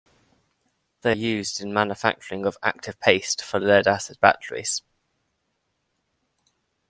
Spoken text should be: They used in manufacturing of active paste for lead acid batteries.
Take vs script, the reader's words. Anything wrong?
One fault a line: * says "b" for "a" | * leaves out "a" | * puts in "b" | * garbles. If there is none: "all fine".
all fine